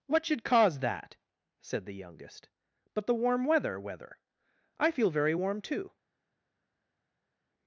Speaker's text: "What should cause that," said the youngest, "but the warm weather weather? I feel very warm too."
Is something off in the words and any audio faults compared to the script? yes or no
no